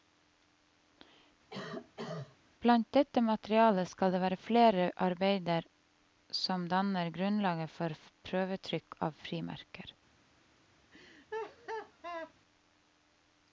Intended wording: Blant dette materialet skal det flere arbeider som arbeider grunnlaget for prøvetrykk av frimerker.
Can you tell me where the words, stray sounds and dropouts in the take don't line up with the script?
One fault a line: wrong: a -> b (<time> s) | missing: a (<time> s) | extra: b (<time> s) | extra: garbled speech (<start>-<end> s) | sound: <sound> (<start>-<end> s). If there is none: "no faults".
sound: cough (1.5-2.4 s)
extra: være (4.2 s)
wrong: arbeider -> danner (6.7 s)
sound: laugh (10.9-12.3 s)